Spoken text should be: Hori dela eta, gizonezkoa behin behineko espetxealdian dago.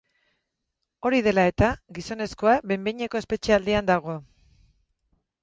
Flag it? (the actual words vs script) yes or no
no